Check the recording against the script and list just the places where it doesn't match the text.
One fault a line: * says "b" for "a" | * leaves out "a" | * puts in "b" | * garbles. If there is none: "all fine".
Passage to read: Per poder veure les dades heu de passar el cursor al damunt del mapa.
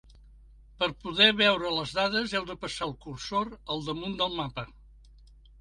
all fine